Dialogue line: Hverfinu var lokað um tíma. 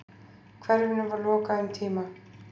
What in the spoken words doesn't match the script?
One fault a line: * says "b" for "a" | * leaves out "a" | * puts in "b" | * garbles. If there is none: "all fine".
all fine